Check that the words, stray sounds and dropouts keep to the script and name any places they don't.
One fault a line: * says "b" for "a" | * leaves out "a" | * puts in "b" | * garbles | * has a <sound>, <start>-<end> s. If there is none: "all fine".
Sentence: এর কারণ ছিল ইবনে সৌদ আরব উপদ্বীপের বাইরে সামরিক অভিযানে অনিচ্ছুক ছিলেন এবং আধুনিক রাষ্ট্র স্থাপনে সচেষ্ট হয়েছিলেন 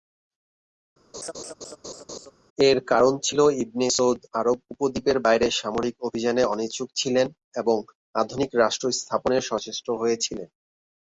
* has a laugh, 1.1-2.3 s